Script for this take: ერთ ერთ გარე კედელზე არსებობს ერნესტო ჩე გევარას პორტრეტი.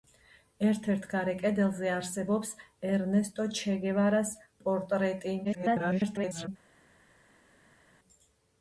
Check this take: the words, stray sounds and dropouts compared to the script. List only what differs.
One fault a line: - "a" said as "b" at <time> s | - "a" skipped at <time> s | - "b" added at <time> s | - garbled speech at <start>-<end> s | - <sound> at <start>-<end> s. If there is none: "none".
- garbled speech at 5.4-6.5 s